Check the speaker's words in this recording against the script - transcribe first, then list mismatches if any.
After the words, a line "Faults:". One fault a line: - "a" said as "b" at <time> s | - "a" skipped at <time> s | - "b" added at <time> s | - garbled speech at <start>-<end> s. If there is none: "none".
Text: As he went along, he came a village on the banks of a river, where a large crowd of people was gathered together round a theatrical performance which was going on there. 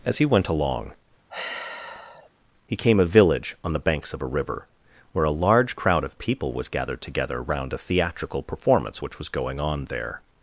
As he went along, he came a village on the banks of a river, where a large crowd of people was gathered together round a theatrical performance which was going on there.
Faults:
none